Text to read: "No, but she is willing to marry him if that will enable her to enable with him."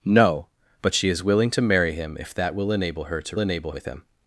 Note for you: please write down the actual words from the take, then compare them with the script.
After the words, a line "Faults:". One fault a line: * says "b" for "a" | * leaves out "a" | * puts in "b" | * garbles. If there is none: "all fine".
"No, but she is willing to marry him if that will enable her to enable with him."
Faults:
all fine